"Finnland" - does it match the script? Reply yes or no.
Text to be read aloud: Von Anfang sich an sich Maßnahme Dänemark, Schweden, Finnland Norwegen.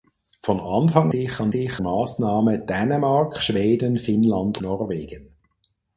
yes